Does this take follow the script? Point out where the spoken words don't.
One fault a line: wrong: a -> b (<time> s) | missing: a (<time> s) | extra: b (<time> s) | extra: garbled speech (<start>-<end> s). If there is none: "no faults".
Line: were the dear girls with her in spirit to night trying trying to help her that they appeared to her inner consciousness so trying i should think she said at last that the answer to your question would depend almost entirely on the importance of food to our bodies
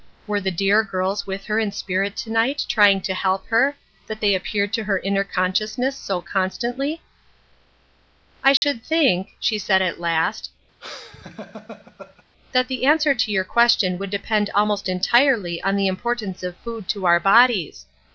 missing: trying (3.0 s)
wrong: trying -> constantly (6.2 s)